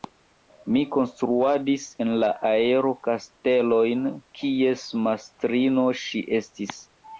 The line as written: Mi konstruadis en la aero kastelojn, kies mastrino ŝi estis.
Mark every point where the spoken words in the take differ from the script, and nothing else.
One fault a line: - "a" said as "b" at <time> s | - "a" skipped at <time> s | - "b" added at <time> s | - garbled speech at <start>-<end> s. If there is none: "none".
none